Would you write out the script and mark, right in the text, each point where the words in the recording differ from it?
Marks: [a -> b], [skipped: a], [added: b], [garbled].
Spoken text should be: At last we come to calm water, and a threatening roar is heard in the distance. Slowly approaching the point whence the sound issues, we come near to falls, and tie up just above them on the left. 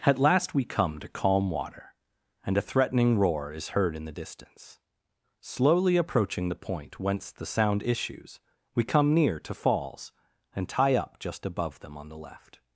At last we come to calm water, and a threatening roar is heard in the distance. Slowly approaching the point whence the sound issues, we come near to falls, and tie up just above them on the left.